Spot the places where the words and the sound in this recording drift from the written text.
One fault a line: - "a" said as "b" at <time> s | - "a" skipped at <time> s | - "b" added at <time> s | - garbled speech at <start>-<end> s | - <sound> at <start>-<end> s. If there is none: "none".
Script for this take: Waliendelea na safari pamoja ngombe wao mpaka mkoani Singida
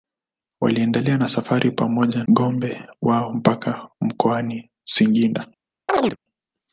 - chirp at 5.9-6.2 s